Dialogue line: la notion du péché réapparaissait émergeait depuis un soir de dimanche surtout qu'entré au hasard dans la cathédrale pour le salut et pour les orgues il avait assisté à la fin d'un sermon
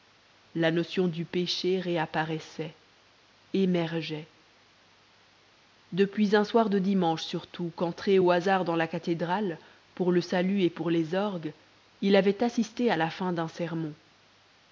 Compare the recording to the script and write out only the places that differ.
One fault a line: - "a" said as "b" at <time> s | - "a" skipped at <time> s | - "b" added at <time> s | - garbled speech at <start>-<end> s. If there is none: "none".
none